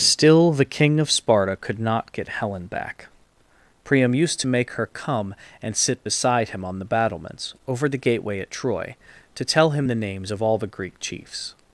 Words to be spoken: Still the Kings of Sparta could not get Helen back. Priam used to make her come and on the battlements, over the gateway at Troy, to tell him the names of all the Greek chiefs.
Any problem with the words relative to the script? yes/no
yes